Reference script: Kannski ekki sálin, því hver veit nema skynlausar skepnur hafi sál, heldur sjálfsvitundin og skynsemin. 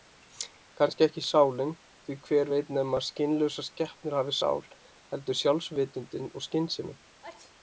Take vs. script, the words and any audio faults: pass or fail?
fail